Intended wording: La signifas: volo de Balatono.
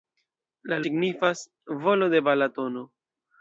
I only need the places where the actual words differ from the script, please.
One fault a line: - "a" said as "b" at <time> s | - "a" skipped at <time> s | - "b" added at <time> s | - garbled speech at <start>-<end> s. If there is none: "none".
none